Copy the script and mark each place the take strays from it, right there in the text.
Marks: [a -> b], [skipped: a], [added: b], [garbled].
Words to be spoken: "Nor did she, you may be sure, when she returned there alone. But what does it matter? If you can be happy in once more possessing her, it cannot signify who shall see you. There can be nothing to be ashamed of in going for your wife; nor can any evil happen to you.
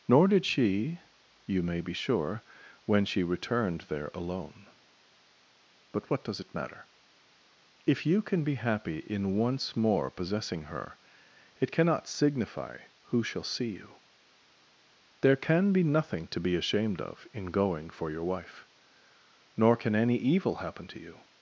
"Nor did she, you may be sure, when she returned there alone. But what does it matter? If you can be happy in once more possessing her, it cannot signify who shall see you. There can be nothing to be ashamed of in going for your wife; nor can any evil happen to you.